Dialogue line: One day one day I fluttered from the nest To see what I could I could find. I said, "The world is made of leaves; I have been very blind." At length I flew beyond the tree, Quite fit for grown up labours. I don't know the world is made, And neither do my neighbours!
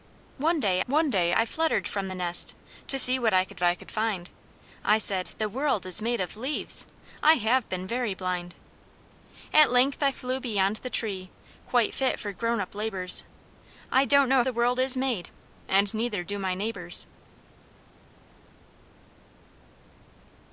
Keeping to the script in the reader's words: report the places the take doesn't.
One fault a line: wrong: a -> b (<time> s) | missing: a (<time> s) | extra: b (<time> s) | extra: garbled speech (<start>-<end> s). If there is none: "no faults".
no faults